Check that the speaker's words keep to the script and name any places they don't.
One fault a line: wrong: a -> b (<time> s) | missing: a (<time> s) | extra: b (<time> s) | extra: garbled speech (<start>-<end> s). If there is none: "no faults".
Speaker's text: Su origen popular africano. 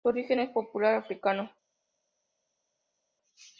extra: es (0.4 s)